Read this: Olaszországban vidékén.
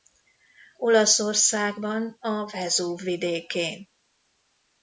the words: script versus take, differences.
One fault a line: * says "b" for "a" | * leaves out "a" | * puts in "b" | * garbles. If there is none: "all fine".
* puts in "a Vezúv"